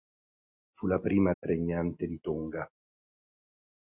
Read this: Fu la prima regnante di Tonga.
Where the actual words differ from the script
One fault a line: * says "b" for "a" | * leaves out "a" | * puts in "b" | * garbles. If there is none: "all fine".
all fine